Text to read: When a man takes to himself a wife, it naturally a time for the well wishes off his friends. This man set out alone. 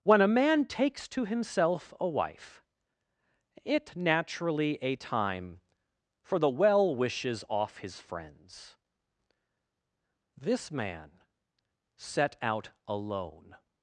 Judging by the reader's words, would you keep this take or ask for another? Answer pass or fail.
pass